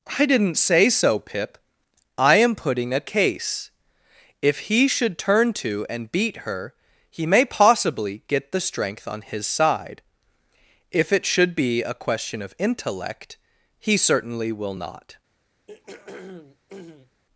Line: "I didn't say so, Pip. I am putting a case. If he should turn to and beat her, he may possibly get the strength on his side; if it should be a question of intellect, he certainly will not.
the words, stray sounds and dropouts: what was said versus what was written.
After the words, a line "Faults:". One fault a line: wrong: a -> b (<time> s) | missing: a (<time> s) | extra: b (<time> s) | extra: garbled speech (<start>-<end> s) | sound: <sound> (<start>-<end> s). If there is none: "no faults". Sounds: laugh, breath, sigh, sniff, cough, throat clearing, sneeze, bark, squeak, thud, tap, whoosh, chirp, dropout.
"I didn't say so, Pip. I am putting a case. If he should turn to and beat her, he may possibly get the strength on his side; if it should be a question of intellect, he certainly will not.
Faults:
sound: throat clearing (15.7-17.2 s)